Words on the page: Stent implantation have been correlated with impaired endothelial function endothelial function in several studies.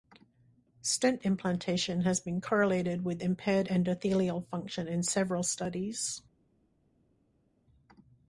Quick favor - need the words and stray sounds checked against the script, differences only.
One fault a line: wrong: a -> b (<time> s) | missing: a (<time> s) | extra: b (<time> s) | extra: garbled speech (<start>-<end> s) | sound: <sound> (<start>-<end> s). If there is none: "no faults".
wrong: have -> has (2.0 s)
missing: endothelial function (4.9 s)